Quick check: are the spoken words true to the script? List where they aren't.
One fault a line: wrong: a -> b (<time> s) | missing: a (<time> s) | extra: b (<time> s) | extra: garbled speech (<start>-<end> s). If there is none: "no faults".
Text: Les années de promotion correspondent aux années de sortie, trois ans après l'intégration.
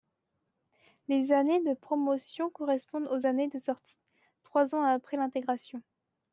no faults